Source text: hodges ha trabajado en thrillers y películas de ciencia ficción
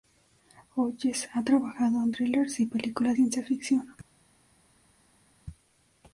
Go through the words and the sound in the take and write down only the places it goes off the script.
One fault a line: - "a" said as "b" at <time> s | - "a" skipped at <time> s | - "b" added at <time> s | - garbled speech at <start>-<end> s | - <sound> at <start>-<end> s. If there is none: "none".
- "de" skipped at 3.2 s